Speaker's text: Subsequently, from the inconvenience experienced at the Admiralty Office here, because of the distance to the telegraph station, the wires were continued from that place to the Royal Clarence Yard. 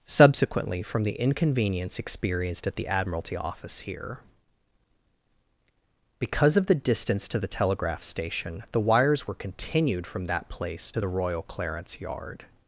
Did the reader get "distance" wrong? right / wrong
right